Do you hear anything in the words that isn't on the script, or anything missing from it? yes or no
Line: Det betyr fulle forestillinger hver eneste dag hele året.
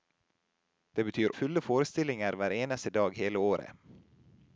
no